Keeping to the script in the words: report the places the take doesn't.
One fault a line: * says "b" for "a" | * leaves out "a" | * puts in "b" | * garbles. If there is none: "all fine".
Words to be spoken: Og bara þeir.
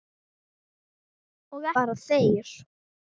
all fine